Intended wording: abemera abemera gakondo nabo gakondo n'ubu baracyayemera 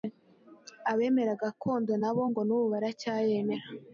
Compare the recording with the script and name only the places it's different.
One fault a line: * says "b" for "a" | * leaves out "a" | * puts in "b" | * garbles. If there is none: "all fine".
* leaves out "abemera"
* says "ngo" for "gakondo"